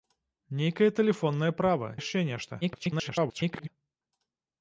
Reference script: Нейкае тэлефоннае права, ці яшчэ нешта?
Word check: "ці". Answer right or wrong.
wrong